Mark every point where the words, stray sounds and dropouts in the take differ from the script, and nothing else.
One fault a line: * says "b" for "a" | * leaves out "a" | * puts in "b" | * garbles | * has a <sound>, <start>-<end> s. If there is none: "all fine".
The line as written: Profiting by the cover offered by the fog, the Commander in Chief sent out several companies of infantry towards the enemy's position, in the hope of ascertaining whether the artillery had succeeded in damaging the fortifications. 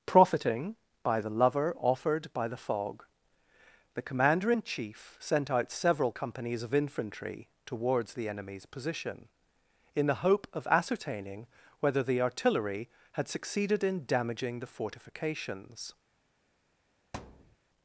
* says "lover" for "cover"
* has a thud, 17.1-17.6 s